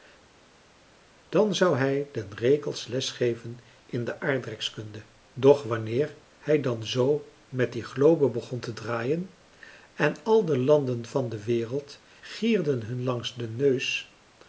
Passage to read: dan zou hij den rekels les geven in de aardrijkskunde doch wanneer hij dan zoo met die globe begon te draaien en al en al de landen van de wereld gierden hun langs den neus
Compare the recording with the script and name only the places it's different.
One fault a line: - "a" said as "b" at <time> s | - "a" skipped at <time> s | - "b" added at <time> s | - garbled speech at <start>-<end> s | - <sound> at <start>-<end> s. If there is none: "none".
- "en al" skipped at 10.5 s